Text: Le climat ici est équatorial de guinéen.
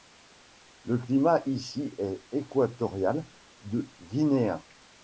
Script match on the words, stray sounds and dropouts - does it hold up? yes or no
yes